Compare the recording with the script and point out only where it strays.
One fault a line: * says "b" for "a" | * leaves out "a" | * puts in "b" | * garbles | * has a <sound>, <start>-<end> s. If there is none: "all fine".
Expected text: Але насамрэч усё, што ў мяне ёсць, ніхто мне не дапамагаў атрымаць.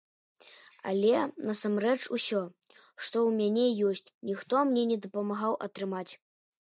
all fine